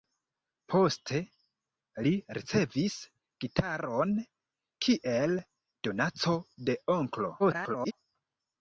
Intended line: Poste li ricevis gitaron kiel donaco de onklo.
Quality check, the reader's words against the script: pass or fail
fail